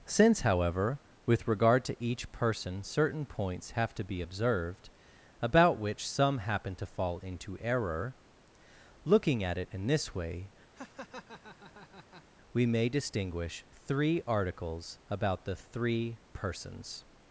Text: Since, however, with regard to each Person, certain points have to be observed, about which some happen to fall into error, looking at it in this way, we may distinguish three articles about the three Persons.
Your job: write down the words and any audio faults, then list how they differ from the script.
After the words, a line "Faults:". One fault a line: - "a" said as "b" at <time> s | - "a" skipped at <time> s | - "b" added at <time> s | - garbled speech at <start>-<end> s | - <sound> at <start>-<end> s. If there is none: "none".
Since, however, with regard to each Person, certain points have to be observed, about which some happen to fall into error, looking at it in this way, we may distinguish three articles about the three Persons.
Faults:
- laugh at 10.8-12.2 s